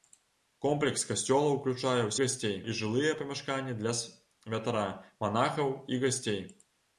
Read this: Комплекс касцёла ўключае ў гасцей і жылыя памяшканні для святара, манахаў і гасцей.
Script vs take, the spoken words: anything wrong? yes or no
no